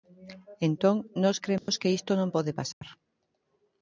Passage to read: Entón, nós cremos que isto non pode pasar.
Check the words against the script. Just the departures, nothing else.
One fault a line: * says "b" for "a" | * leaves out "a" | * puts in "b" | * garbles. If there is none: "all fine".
all fine